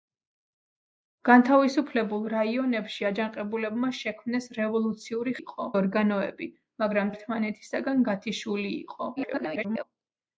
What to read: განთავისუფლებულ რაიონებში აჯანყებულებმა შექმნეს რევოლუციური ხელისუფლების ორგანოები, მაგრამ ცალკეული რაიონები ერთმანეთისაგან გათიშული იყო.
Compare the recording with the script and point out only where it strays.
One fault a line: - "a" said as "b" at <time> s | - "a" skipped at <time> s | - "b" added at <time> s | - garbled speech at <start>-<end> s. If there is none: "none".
- "ხელისუფლების" said as "იყო" at 5.4 s
- "ცალკეული რაიონები" skipped at 7.1 s
- garbled speech at 9.2-9.8 s